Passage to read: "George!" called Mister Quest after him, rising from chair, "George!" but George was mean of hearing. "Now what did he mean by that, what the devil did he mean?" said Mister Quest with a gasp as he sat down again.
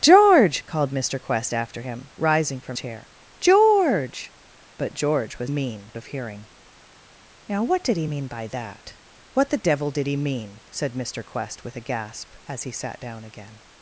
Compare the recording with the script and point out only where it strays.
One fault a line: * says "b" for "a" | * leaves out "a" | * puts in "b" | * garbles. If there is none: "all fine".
all fine